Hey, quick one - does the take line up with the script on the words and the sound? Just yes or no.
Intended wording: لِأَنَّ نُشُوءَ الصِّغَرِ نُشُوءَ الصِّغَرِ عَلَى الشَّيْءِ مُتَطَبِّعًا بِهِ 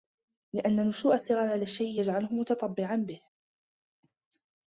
no